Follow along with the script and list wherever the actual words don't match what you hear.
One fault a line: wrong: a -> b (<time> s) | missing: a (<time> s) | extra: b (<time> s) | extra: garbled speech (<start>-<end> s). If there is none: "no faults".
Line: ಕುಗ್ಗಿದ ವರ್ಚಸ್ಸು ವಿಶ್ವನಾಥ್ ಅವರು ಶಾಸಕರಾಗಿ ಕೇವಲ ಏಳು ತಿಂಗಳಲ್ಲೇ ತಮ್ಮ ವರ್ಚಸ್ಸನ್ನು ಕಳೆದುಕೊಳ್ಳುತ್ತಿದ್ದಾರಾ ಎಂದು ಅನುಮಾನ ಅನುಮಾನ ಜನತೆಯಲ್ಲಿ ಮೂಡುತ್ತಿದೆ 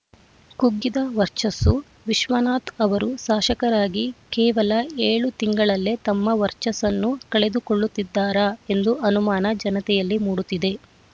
missing: ಅನುಮಾನ (9.5 s)